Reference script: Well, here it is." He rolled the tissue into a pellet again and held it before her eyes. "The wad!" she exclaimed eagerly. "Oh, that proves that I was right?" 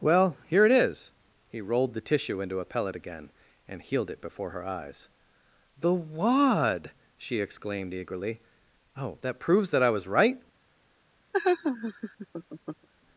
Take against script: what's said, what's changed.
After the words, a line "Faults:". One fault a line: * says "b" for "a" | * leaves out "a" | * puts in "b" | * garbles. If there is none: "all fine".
Well, here it is." He rolled the tissue into a pellet again and healed it before her eyes. "The wad!" she exclaimed eagerly. "Oh, that proves that I was right?"
Faults:
* says "healed" for "held"